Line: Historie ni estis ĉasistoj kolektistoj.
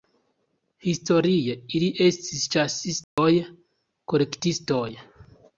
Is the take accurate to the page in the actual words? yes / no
no